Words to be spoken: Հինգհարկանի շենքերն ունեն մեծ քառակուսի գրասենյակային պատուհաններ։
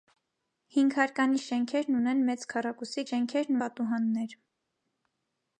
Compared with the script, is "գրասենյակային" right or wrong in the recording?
wrong